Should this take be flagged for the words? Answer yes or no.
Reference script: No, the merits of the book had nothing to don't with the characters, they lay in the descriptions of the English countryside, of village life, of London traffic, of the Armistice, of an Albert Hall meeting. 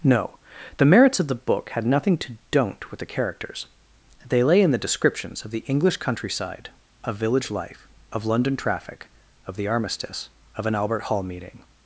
no